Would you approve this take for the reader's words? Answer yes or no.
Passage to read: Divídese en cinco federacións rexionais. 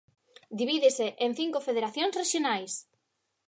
yes